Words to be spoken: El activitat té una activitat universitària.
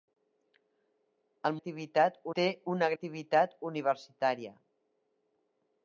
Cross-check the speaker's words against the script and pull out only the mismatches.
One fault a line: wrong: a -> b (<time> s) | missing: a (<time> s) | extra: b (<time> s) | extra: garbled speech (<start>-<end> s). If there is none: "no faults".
no faults